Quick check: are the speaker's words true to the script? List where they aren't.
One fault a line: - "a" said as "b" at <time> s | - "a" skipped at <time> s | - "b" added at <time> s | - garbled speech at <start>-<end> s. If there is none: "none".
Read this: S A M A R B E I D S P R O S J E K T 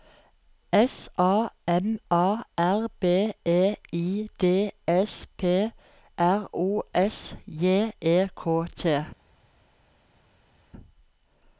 none